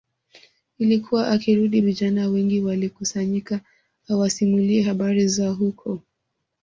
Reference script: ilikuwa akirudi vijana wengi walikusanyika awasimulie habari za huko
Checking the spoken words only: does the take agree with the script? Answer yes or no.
yes